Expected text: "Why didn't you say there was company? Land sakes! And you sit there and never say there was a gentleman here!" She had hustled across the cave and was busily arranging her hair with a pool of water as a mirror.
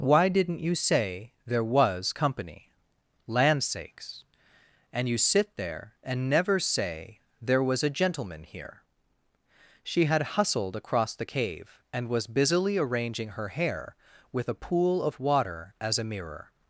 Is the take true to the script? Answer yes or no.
yes